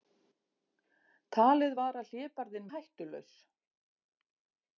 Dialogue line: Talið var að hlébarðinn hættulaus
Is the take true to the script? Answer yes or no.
yes